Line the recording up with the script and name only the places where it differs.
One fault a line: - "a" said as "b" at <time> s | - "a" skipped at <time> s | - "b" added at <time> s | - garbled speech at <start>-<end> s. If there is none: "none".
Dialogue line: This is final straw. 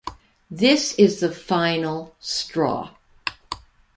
- "the" added at 1.2 s